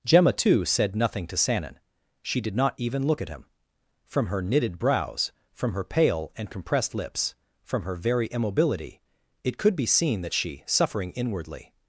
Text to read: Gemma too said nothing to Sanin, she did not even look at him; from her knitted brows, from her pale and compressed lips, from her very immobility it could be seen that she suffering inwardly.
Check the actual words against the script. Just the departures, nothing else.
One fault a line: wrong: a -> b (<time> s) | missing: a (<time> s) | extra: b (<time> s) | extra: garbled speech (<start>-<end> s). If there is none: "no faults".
no faults